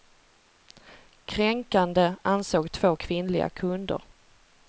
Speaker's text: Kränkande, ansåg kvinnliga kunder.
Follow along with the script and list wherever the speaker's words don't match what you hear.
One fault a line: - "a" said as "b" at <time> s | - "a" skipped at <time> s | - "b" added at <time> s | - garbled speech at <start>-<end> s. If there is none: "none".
- "två" added at 2.7 s